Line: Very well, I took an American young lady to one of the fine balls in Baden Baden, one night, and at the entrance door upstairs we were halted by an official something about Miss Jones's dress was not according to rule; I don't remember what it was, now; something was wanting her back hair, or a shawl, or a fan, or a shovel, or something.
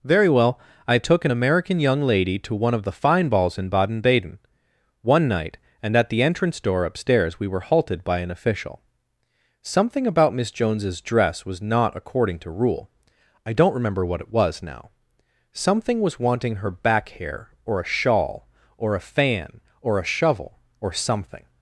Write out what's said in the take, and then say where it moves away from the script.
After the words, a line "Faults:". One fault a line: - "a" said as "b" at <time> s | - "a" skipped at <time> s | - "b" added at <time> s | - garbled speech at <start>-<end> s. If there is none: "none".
Very well, I took an American young lady to one of the fine balls in Baden Baden, one night, and at the entrance door upstairs we were halted by an official something about Miss Jones's dress was not according to rule; I don't remember what it was, now; something was wanting her back hair, or a shawl, or a fan, or a shovel, or something.
Faults:
none